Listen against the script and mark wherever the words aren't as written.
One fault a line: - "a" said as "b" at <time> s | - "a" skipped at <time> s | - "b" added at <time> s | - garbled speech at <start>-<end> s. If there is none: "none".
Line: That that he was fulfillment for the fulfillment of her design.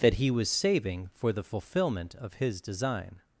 - "that" skipped at 0.1 s
- "fulfillment" said as "saving" at 0.5 s
- "her" said as "his" at 2.4 s